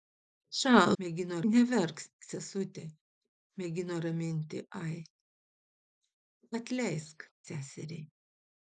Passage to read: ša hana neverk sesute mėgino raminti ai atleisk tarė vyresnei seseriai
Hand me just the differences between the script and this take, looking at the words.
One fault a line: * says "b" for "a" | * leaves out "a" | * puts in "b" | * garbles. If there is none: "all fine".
* says "mėgino" for "hana"
* leaves out "tarė vyresnei"